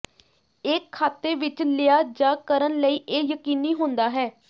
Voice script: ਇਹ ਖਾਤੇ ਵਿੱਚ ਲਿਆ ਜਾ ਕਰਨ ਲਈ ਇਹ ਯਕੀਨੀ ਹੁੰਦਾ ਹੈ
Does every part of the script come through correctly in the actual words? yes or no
yes